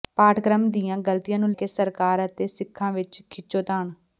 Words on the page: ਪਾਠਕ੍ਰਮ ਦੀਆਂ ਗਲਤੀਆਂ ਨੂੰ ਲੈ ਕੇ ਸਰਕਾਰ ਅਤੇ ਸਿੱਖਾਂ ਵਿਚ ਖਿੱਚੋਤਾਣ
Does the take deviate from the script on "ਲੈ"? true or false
true